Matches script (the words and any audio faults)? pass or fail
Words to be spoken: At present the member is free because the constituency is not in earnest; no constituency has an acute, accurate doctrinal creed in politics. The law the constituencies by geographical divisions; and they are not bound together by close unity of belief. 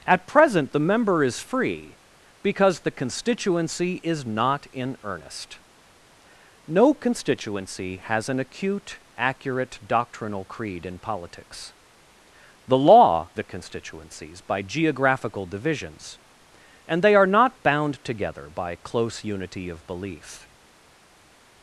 pass